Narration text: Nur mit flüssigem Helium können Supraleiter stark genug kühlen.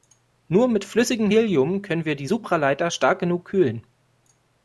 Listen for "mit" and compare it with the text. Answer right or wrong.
right